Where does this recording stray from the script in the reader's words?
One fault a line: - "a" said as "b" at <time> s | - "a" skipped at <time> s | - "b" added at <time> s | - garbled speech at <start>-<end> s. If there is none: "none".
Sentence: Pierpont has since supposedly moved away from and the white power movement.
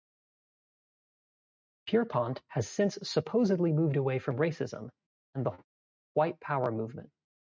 - "racism" added at 4.4 s